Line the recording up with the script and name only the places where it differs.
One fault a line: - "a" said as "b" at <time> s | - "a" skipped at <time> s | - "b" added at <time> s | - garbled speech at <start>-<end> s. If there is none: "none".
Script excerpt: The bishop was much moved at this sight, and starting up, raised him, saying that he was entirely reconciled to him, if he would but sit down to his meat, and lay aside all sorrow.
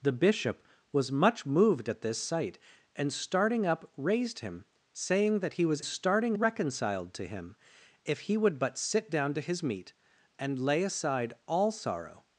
- "entirely" said as "starting" at 5.8 s